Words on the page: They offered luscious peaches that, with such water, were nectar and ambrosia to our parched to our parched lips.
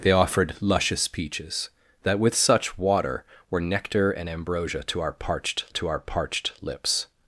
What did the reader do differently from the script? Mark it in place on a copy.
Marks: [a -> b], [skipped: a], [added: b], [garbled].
They offered luscious peaches that, with such water, were nectar and ambrosia to our parched to our parched lips.